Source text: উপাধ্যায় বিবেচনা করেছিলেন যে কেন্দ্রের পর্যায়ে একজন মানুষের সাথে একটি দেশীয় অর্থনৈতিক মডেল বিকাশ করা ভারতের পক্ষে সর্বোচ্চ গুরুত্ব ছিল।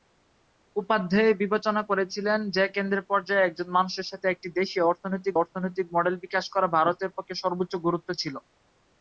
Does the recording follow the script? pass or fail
fail